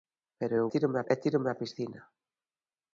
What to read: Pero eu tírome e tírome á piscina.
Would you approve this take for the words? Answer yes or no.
yes